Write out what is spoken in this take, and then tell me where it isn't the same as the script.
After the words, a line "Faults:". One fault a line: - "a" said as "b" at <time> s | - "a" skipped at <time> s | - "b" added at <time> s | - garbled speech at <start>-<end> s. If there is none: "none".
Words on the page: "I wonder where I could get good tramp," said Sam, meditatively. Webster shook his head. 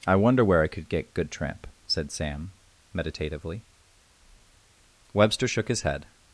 "I wonder where I could get good tramp," said Sam, meditatively. Webster shook his head.
Faults:
none